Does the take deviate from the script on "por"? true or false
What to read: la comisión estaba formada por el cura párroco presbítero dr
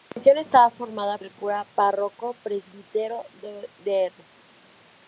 true